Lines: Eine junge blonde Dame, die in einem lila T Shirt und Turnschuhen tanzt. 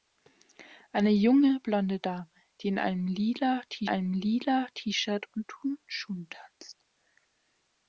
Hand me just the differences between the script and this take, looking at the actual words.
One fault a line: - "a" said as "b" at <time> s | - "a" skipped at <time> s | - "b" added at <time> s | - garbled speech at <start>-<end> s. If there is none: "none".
- "einem lila T" added at 3.9 s